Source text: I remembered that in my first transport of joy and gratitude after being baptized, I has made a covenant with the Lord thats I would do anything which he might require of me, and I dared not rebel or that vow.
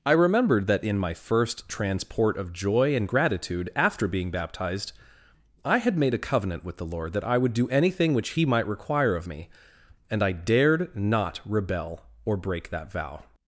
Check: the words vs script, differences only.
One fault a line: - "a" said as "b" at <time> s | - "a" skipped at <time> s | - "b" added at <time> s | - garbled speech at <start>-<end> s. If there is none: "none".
- "has" said as "had" at 5.8 s
- "thats" said as "that" at 7.1 s
- "break" added at 12.4 s